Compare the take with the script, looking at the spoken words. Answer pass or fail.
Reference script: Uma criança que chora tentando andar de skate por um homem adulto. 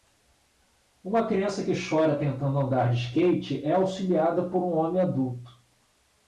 fail